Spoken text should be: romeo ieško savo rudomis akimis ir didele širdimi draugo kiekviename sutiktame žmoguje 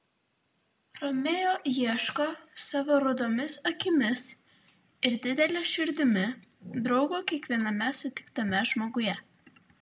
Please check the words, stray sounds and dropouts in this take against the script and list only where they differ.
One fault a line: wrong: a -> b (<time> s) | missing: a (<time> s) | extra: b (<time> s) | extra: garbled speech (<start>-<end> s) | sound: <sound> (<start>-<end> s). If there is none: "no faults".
no faults